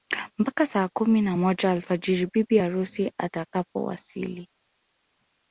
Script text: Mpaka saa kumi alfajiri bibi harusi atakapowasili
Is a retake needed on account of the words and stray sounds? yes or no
yes